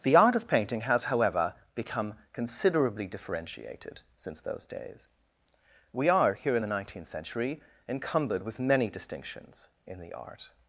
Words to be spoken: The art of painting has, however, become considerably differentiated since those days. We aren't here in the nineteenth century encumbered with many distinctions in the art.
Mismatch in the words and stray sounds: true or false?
true